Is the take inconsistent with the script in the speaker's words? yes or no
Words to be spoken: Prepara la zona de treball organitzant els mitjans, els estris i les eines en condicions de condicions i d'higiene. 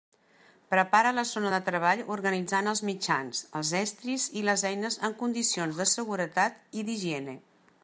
yes